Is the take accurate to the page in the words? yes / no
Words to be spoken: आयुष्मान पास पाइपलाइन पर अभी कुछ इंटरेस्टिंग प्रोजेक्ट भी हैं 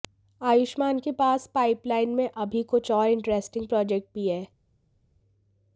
no